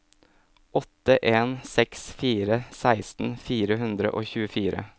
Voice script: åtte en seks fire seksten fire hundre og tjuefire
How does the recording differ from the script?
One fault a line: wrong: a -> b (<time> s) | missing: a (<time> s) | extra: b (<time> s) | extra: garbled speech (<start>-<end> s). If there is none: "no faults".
no faults